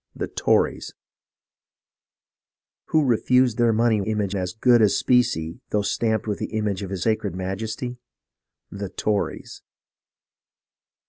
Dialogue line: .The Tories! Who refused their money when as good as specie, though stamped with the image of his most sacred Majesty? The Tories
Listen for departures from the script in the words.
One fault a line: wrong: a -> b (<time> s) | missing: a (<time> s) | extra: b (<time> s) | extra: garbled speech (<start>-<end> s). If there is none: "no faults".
wrong: when -> image (4.1 s)
missing: most (7.0 s)